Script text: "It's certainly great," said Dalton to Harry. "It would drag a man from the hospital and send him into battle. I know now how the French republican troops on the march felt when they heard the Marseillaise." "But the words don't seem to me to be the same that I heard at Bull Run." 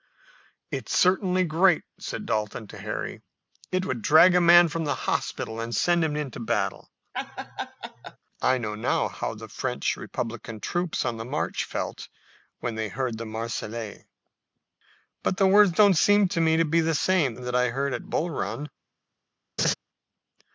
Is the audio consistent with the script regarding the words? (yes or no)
yes